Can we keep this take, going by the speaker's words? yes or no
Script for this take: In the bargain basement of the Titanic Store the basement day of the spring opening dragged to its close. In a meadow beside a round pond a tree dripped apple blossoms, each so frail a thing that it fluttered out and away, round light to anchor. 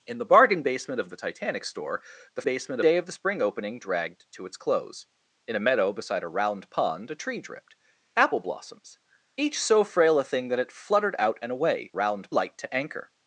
yes